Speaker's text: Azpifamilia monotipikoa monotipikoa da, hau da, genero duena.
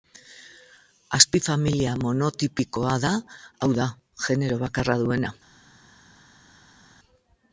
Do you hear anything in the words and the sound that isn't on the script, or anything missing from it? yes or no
yes